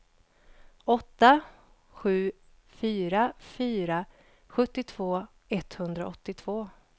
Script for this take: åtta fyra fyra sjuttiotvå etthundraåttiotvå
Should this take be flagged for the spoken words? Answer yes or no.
yes